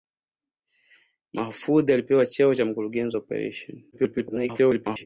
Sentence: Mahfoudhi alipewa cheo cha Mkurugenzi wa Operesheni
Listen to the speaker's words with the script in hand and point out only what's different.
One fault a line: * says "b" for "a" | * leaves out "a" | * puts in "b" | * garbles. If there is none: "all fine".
* garbles